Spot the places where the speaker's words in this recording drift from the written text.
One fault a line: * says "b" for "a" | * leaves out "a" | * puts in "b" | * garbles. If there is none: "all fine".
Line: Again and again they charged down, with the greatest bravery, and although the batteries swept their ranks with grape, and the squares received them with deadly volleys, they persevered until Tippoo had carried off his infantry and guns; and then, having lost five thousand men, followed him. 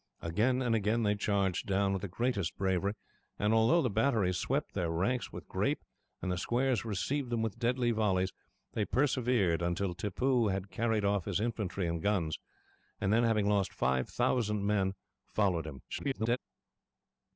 * garbles